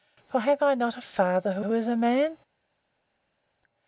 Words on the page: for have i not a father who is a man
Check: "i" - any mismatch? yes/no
no